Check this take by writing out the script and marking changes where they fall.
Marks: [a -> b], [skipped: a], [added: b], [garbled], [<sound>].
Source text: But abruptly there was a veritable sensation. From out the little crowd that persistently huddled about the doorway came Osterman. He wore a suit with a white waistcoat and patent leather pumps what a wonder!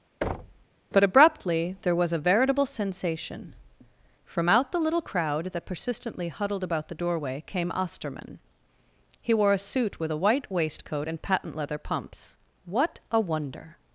[thud] But abruptly there was a veritable sensation. From out the little crowd that persistently huddled about the doorway came Osterman. He wore a suit with a white waistcoat and patent leather pumps what a wonder!